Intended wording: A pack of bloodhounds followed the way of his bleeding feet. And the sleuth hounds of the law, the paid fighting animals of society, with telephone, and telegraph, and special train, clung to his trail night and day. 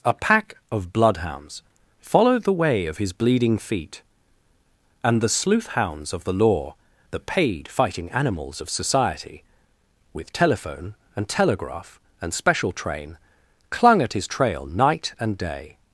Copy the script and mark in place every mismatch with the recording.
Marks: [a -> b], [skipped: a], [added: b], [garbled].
A pack of bloodhounds followed the way of his bleeding feet. And the sleuth hounds of the law, the paid fighting animals of society, with telephone, and telegraph, and special train, clung [to -> at] his trail night and day.